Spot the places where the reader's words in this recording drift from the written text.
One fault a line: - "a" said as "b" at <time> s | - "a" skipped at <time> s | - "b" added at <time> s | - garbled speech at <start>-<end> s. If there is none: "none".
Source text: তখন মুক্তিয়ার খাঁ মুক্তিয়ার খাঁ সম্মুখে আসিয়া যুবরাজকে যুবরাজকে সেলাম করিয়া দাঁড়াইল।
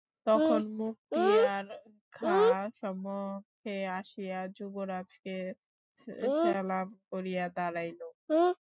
- "মুক্তিয়ার খাঁ" skipped at 2.6 s
- "যুবরাজকে" skipped at 5.4 s